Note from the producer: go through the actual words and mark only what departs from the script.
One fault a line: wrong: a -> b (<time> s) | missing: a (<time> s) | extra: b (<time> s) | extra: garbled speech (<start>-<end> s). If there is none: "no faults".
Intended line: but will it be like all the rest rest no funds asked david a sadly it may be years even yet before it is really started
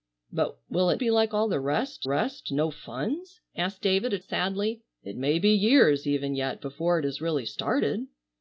no faults